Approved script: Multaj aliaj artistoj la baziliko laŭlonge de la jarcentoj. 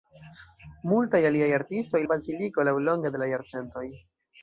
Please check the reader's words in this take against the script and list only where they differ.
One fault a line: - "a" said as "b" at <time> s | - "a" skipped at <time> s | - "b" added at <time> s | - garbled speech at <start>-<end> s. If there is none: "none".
none